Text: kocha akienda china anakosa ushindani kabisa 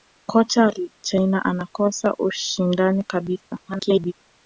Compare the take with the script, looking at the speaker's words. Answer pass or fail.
fail